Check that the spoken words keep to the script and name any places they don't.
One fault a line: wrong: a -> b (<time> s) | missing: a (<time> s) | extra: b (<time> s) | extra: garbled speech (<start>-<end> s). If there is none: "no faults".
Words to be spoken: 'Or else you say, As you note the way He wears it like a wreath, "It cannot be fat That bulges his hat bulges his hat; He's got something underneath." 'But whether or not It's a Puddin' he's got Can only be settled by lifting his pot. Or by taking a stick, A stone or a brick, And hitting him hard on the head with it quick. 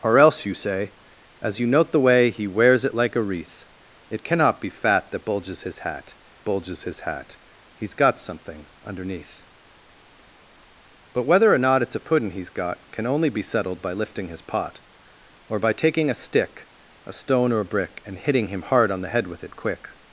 no faults